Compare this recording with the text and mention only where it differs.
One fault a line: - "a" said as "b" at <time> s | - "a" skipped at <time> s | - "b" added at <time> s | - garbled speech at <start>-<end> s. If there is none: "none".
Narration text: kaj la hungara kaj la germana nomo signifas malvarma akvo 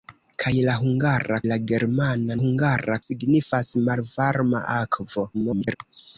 - "kaj" skipped at 1.4 s
- "nomo" said as "hungara" at 2.4 s
- garbled speech at 5.3-5.8 s